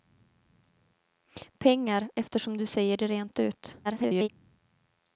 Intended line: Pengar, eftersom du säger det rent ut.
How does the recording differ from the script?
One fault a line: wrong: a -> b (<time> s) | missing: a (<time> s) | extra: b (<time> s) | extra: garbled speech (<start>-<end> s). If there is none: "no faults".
extra: garbled speech (3.8-4.3 s)